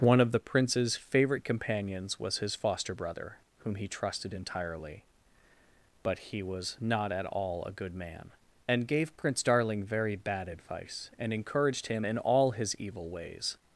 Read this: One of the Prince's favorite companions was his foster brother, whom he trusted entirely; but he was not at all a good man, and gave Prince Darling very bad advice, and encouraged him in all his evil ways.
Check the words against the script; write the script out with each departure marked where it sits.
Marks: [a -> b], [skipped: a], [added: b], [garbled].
One of the Prince's favorite companions was his foster brother, whom he trusted entirely; but he was not at all a good man, and gave Prince Darling very bad advice, and encouraged him in all his evil ways.